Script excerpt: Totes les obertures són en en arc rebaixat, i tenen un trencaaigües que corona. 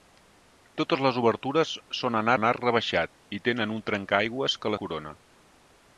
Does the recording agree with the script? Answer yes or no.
yes